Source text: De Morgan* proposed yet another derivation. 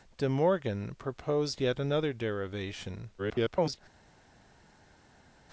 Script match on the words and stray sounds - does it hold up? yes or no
no